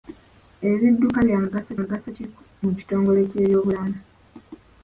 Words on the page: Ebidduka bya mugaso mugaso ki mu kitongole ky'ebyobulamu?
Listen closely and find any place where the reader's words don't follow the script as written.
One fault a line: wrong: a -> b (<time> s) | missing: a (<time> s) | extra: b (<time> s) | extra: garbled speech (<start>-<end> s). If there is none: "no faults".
no faults